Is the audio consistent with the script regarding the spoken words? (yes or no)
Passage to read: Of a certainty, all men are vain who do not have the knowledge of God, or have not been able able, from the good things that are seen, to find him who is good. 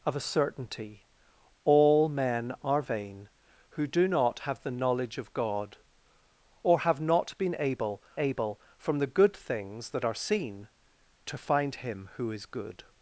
yes